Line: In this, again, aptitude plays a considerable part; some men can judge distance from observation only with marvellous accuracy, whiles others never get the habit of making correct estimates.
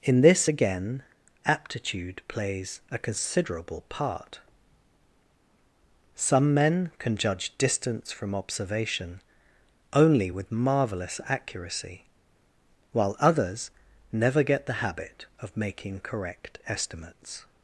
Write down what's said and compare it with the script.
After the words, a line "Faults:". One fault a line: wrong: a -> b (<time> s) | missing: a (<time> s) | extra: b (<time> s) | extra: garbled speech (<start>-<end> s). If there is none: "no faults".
In this, again, aptitude plays a considerable part; some men can judge distance from observation only with marvellous accuracy, while others never get the habit of making correct estimates.
Faults:
wrong: whiles -> while (12.9 s)